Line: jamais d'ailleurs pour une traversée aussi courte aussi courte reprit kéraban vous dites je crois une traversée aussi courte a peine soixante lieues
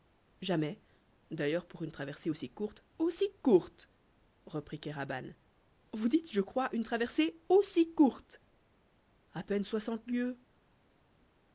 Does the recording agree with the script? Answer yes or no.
yes